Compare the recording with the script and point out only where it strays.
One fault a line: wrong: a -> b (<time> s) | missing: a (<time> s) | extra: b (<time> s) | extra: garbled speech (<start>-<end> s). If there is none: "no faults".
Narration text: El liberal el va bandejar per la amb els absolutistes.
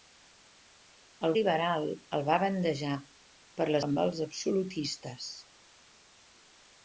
no faults